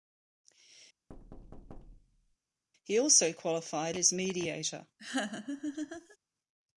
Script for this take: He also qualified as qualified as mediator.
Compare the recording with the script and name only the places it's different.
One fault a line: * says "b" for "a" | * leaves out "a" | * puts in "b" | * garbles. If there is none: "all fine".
* leaves out "qualified as"